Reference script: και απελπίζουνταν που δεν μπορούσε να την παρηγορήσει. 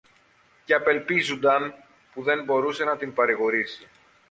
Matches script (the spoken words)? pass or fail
pass